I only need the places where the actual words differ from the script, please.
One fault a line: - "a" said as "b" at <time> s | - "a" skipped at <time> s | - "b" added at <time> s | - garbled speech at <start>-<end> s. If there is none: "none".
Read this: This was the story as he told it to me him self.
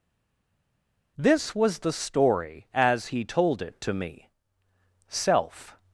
- "him" skipped at 4.3 s